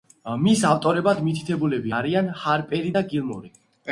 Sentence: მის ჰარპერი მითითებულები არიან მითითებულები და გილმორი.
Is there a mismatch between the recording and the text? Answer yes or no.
yes